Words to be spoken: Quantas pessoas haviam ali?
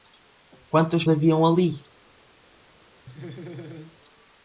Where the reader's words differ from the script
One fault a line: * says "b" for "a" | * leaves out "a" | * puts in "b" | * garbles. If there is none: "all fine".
* leaves out "pessoas"